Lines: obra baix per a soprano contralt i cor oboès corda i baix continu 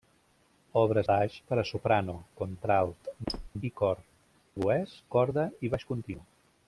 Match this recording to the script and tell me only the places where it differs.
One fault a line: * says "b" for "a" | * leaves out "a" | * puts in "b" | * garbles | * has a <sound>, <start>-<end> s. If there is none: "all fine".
* has a squeak, 3.3-3.5 s